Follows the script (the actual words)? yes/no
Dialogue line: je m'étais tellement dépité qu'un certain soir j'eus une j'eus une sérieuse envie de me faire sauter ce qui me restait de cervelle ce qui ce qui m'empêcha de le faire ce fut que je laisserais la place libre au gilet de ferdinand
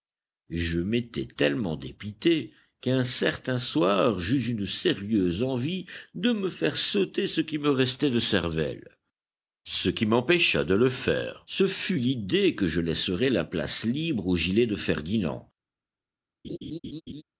no